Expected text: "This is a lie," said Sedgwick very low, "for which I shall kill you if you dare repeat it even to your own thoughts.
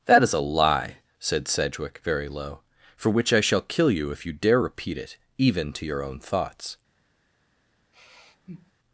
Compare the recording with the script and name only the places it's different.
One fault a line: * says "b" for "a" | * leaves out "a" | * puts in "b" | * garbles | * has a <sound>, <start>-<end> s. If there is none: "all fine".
* says "That" for "This"
* has a sigh, 7.9-8.7 s